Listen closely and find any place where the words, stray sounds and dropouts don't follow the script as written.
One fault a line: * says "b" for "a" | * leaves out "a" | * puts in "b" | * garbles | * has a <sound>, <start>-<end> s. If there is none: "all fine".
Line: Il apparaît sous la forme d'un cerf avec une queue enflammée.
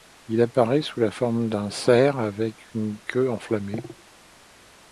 all fine